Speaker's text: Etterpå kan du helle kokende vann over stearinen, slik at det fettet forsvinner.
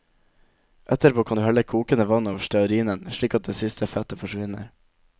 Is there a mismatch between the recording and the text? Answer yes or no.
yes